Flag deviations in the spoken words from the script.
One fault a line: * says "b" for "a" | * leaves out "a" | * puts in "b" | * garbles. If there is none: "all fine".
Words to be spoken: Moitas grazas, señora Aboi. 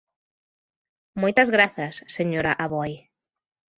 all fine